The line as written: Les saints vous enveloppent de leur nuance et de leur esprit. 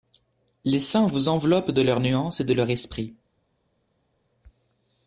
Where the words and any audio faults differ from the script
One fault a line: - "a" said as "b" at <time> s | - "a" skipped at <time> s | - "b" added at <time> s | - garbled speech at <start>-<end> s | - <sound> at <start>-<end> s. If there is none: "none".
none